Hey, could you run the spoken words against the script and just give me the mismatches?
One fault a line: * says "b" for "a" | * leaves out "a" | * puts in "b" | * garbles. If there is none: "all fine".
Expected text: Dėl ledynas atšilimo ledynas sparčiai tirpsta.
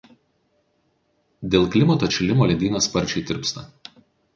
* says "klimato" for "ledynas"